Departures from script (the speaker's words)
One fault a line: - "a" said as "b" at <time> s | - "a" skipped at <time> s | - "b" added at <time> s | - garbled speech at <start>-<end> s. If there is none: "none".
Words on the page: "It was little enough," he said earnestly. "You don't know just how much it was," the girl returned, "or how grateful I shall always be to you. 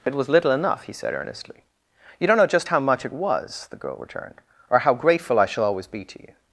none